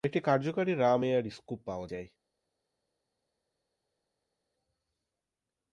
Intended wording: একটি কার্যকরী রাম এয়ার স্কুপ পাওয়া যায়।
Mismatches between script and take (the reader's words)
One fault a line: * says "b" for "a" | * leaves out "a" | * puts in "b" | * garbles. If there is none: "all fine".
all fine